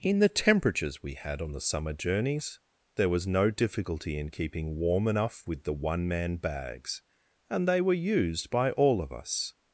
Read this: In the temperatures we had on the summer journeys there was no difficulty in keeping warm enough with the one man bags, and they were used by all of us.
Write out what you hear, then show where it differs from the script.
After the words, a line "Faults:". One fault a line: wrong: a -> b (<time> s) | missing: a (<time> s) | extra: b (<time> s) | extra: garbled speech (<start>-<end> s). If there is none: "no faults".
In the temperatures we had on the summer journeys there was no difficulty in keeping warm enough with the one man bags, and they were used by all of us.
Faults:
no faults